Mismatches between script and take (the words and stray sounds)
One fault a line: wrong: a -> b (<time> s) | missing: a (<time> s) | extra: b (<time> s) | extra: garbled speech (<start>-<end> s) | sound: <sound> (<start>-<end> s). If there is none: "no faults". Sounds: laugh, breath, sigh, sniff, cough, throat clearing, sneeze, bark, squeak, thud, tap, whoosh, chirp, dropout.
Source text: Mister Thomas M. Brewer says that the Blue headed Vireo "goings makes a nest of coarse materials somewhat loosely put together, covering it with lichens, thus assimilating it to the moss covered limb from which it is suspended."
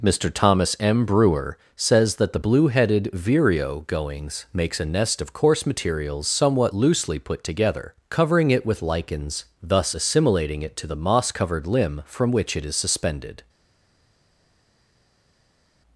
no faults